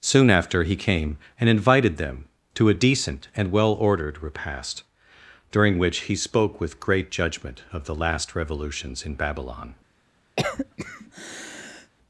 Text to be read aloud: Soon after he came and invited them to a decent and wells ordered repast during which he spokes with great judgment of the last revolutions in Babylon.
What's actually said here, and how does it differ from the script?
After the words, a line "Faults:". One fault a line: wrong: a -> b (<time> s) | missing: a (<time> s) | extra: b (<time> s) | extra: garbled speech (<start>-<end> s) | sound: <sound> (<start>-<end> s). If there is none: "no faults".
Soon after he came and invited them to a decent and well ordered repast during which he spoke with great judgment of the last revolutions in Babylon.
Faults:
wrong: wells -> well (3.5 s)
wrong: spokes -> spoke (6.2 s)
sound: cough (10.4-11.9 s)